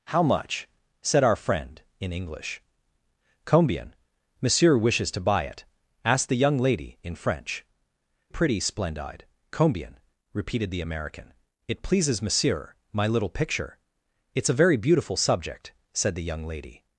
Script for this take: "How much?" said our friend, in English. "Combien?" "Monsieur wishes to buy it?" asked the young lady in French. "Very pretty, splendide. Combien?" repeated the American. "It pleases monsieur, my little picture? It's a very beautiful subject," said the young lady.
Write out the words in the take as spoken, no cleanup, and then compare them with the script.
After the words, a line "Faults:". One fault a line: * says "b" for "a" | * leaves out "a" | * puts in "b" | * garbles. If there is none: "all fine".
"How much?" said our friend, in English. "Combien?" "Monsieur wishes to buy it?" asked the young lady in French. "Pretty, splendide. Combien?" repeated the American. "It pleases monsieur, my little picture? It's a very beautiful subject," said the young lady.
Faults:
* leaves out "Very"